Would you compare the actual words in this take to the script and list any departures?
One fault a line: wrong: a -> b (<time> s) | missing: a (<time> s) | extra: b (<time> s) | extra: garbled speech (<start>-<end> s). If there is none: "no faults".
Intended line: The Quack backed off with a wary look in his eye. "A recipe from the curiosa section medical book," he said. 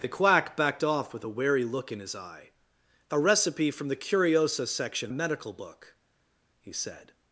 no faults